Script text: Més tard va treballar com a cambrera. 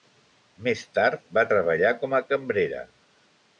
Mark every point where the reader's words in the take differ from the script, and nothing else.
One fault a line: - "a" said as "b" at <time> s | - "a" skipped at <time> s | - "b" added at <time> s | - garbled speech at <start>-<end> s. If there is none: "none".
none